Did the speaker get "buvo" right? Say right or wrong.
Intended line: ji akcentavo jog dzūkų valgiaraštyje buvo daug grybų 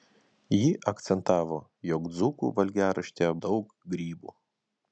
wrong